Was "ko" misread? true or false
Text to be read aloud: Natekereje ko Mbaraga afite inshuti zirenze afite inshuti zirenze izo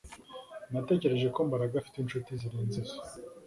false